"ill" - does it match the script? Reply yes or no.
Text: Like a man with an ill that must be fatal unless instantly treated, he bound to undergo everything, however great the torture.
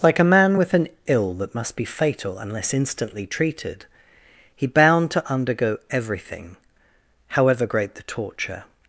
yes